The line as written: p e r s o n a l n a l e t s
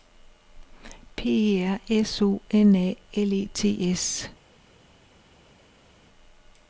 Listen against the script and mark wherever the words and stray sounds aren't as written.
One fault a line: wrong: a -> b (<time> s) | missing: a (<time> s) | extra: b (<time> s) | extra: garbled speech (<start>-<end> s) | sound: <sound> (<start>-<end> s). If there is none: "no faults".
missing: n a l (3.3 s)